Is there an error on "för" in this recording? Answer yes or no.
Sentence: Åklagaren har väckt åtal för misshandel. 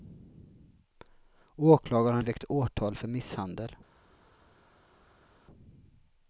no